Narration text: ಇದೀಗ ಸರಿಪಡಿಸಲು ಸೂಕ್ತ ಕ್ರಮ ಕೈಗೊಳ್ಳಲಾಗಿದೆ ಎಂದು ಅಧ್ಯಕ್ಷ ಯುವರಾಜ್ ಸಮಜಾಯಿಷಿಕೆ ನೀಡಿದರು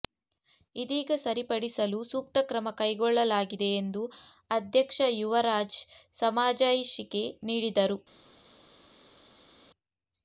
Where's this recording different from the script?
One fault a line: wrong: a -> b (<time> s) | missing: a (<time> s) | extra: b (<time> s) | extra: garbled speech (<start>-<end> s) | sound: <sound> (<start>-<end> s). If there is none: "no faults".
no faults